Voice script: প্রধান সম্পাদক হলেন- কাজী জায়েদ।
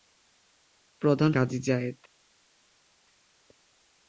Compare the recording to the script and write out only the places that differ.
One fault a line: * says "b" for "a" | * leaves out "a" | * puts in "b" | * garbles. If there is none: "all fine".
* leaves out "সম্পাদক হলেন"